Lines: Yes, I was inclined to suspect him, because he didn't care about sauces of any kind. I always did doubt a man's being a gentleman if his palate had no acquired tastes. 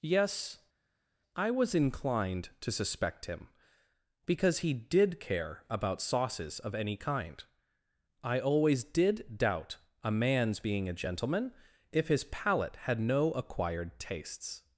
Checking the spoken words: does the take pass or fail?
fail